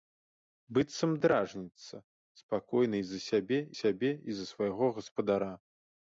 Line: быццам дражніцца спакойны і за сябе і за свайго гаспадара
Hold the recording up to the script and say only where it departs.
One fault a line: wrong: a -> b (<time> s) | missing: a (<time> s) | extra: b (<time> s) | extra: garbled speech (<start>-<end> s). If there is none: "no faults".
extra: сябе (3.8 s)